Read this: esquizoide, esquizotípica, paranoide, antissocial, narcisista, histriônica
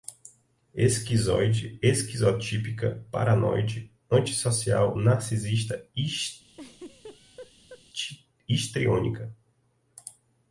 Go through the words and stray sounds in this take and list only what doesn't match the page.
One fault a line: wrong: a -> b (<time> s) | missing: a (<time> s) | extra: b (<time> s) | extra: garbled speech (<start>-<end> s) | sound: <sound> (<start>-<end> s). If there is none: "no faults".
sound: laugh (6.5-7.8 s)